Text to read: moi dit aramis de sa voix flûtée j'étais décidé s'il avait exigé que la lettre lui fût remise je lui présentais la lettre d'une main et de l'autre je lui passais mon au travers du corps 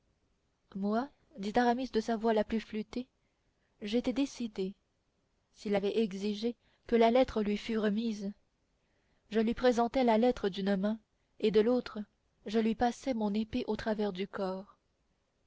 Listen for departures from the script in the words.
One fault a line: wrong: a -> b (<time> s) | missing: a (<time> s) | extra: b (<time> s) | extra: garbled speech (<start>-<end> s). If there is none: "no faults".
extra: la plus (2.3 s)
extra: épée (13.3 s)